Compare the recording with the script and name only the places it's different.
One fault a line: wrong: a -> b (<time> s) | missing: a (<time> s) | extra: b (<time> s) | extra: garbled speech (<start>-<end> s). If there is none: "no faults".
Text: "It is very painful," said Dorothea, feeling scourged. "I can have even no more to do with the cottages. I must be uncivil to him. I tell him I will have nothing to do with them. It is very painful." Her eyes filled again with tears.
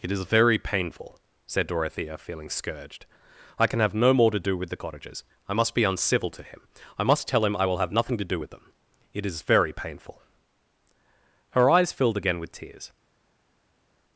missing: even (3.9 s)
extra: must (7.0 s)